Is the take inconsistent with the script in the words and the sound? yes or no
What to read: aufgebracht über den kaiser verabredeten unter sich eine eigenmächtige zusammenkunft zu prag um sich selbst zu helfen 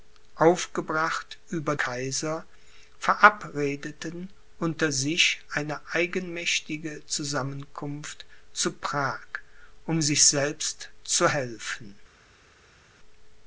yes